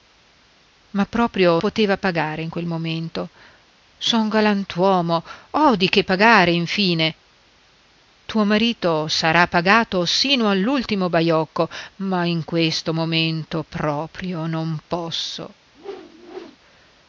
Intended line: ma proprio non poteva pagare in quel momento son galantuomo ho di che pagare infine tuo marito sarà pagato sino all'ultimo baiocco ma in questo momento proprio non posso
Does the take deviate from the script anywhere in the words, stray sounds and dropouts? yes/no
yes